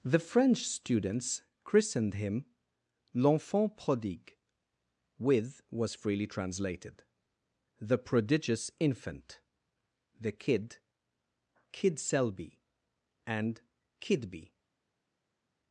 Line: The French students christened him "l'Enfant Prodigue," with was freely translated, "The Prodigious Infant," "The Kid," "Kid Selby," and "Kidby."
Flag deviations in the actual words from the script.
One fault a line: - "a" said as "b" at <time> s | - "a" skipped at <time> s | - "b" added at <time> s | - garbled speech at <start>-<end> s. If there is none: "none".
none